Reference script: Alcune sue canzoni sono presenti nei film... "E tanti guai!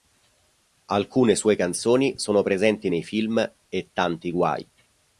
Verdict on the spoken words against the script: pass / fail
pass